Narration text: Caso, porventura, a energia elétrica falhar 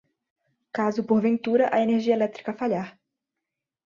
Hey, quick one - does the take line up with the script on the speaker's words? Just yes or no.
yes